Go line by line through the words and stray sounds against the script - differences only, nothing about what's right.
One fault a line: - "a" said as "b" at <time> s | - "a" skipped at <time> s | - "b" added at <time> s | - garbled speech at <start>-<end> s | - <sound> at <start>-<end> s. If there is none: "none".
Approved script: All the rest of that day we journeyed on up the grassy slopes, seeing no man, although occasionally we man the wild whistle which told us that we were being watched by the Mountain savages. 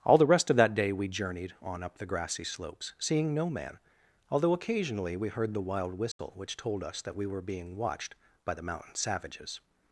- "man" said as "heard" at 5.3 s
- dropout at 6.1-6.2 s